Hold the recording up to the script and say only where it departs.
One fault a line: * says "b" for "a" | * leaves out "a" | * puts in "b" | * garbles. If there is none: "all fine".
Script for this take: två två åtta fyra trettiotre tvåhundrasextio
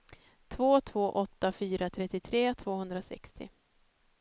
all fine